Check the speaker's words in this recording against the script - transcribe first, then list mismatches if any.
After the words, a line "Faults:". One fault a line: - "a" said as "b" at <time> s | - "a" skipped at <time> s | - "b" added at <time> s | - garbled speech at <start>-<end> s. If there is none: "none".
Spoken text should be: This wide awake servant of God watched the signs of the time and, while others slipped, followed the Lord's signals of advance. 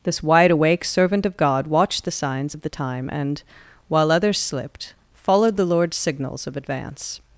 This wide awake servant of God watched the signs of the time and, while others slipped, followed the Lord's signals of advance.
Faults:
none